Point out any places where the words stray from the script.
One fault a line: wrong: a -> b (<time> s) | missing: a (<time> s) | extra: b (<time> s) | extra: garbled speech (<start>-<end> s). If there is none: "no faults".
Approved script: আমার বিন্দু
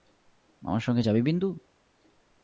extra: সঙ্গে যাবি (0.8 s)